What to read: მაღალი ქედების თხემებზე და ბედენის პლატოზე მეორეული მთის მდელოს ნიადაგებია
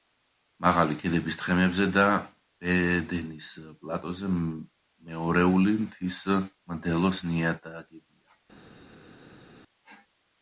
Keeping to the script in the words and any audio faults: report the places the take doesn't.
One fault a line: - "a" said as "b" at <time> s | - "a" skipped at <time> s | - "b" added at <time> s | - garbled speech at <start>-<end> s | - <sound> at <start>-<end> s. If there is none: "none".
none